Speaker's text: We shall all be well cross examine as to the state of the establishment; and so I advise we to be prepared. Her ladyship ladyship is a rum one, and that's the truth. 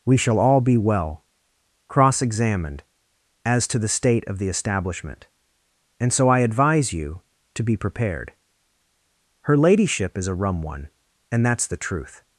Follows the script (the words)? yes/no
no